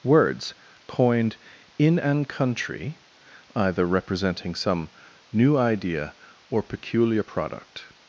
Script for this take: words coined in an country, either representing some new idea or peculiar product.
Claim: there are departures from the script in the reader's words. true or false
false